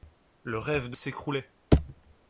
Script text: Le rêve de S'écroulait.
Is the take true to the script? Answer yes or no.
yes